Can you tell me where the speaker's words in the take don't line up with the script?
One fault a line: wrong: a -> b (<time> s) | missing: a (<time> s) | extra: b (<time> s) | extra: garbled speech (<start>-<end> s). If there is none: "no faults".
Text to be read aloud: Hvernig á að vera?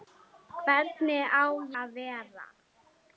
no faults